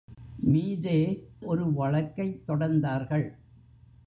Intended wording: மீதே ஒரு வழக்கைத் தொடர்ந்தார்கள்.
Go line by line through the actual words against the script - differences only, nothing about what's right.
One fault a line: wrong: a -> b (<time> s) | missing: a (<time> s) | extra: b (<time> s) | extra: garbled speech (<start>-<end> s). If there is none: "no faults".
no faults